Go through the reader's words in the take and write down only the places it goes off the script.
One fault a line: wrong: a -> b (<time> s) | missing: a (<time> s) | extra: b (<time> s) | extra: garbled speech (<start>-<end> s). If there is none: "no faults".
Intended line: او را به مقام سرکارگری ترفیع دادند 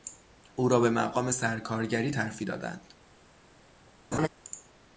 no faults